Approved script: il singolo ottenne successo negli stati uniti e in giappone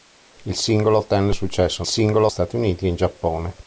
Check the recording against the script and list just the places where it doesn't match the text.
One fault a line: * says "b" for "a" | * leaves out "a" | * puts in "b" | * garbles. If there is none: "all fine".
* says "singolo" for "negli"